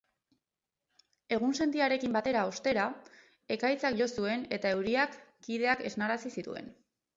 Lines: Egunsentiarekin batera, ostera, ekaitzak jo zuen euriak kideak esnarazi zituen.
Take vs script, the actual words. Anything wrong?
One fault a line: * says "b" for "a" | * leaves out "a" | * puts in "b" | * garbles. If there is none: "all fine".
* puts in "eta"